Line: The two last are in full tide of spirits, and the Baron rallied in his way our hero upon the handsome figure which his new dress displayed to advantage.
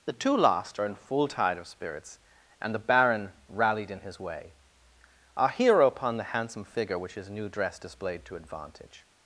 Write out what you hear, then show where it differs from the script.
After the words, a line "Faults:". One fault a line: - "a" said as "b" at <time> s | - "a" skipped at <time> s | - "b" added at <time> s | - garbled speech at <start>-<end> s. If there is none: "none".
The two last are in full tide of spirits, and the Baron rallied in his way our hero upon the handsome figure which his new dress displayed to advantage.
Faults:
none